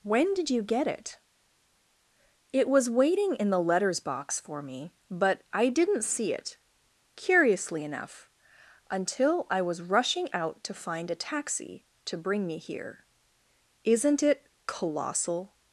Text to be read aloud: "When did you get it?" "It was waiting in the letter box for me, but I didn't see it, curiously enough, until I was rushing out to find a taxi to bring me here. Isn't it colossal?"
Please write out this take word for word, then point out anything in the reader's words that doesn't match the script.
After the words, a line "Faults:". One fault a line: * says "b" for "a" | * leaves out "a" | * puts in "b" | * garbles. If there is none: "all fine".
"When did you get it?" "It was waiting in the letters box for me, but I didn't see it, curiously enough, until I was rushing out to find a taxi to bring me here. Isn't it colossal?"
Faults:
* says "letters" for "letter"